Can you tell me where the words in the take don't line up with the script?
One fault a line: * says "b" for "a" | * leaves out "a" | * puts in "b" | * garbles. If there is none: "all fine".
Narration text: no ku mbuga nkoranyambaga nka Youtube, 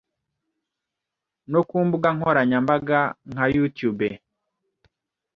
all fine